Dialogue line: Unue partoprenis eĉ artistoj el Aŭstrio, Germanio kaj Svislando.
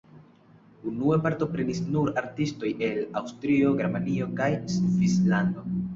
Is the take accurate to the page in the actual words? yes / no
no